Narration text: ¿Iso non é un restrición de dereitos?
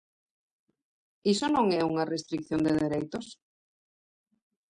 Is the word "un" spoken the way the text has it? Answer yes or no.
no